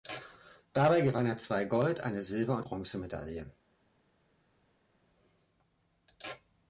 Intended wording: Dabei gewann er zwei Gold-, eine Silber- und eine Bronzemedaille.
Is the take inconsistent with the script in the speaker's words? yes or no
yes